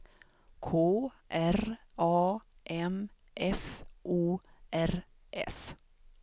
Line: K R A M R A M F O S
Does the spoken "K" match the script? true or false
true